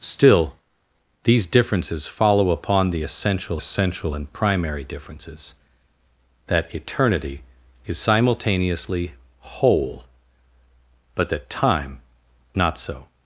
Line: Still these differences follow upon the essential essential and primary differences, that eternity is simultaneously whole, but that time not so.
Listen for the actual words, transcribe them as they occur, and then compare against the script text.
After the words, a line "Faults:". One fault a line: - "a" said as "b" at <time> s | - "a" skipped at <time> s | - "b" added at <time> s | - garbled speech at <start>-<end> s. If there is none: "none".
Still these differences follow upon the essential essential and primary differences, that eternity is simultaneously whole, but that time not so.
Faults:
none